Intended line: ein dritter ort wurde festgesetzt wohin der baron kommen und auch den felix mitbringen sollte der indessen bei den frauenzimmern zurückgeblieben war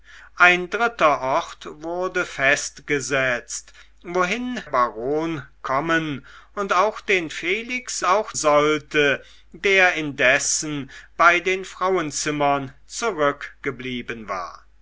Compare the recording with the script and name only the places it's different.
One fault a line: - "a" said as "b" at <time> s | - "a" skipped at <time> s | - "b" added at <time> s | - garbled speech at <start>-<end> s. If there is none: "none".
- "der" skipped at 4.6 s
- "mitbringen" said as "auch" at 8.0 s